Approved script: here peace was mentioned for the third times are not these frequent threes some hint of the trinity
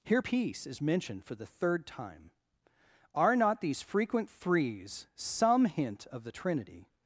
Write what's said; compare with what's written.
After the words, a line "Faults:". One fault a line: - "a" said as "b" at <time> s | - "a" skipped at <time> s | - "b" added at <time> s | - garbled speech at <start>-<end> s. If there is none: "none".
here peace is mentioned for the third time are not these frequent threes some hint of the trinity
Faults:
- "was" said as "is" at 0.7 s
- "times" said as "time" at 1.9 s